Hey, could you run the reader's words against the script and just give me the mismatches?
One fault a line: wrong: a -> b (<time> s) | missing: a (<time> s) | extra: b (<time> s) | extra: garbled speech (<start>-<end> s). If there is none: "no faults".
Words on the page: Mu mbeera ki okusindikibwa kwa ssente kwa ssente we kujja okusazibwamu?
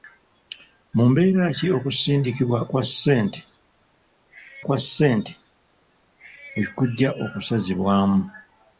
no faults